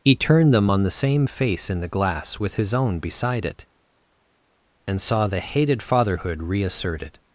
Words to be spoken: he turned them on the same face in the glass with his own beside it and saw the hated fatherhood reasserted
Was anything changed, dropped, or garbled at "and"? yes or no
no